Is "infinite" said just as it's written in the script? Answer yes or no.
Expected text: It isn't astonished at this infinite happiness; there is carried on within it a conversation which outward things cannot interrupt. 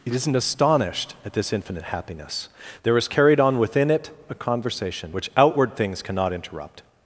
yes